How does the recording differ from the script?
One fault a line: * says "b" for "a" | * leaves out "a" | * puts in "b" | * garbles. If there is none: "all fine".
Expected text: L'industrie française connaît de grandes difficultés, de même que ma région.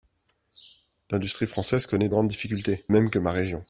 * leaves out "de"
* leaves out "de"